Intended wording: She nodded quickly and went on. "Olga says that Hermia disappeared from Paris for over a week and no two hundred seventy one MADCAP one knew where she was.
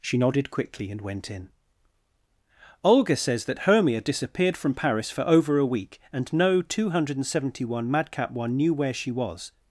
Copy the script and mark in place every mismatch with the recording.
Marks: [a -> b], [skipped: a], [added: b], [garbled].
She nodded quickly and went [on. -> in] "Olga says that Hermia disappeared from Paris for over a week and no two hundred seventy one MADCAP one knew where she was.